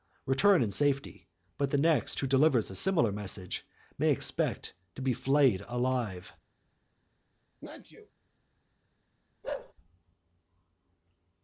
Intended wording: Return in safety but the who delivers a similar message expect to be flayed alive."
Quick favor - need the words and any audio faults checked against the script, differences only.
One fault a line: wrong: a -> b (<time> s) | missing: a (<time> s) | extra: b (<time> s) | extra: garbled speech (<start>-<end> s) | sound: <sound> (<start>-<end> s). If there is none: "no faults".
extra: next (1.8 s)
extra: may (4.0 s)
sound: sneeze (7.6-8.1 s)
sound: bark (9.4-9.7 s)